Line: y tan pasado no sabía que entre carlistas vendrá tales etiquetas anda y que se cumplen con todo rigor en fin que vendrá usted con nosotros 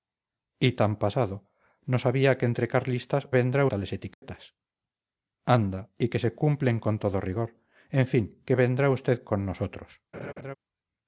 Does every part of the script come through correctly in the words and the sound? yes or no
no